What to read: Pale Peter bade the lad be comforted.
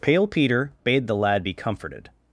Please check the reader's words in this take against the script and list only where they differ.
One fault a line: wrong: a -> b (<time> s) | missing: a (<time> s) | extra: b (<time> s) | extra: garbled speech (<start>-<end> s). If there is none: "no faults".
no faults